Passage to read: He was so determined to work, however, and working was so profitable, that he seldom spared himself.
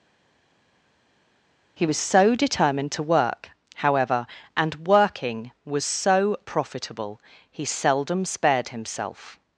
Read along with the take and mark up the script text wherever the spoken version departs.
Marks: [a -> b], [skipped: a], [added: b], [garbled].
He was so determined to work, however, and working was so profitable, [skipped: that] he seldom spared himself.